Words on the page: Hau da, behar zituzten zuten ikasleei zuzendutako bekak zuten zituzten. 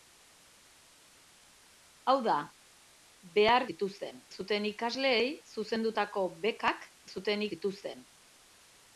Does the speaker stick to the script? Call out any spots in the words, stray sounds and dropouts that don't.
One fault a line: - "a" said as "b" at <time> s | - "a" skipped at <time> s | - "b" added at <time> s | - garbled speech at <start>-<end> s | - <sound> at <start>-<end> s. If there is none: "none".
none